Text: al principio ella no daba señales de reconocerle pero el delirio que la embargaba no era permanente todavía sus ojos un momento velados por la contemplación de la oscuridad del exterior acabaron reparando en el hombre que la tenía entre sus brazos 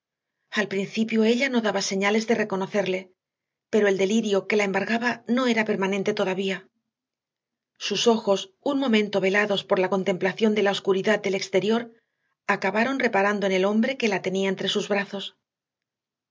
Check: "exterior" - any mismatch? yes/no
no